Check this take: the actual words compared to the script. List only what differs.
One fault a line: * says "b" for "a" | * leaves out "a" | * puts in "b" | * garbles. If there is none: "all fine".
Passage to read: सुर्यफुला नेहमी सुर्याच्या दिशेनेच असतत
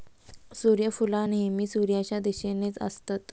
all fine